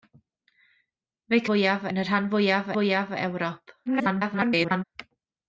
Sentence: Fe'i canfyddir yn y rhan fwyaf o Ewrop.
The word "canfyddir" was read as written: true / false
false